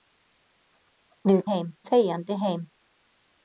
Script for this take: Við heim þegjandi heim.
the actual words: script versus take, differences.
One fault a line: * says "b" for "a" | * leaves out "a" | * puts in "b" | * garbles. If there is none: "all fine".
all fine